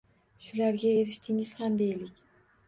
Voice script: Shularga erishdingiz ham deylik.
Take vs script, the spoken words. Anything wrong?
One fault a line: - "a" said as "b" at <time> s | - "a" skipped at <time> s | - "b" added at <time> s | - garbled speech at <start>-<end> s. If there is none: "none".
none